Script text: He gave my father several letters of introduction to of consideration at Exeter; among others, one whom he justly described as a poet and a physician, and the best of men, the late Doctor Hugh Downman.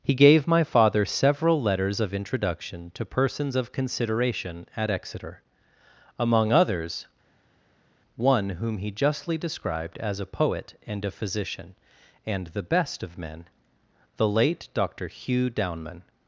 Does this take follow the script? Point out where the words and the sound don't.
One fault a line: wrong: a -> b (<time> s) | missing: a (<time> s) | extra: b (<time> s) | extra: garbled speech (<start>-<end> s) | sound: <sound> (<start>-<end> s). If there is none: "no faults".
extra: persons (3.0 s)